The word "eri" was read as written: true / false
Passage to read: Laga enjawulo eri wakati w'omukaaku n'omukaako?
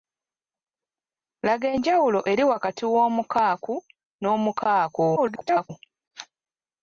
true